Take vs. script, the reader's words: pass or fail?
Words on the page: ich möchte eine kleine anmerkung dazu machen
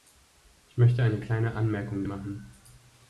fail